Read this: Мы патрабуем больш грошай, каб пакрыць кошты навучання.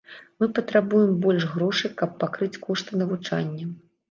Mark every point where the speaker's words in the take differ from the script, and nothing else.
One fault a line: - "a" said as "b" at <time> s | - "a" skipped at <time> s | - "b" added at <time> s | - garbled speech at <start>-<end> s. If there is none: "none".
none